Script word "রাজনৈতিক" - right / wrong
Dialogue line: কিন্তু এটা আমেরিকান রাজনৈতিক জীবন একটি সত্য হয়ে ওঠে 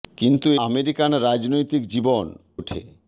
right